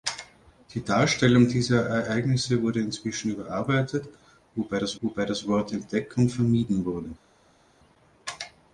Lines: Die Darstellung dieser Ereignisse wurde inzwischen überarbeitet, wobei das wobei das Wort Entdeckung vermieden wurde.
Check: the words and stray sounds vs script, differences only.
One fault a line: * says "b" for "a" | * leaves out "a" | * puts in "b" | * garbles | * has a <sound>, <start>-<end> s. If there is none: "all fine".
all fine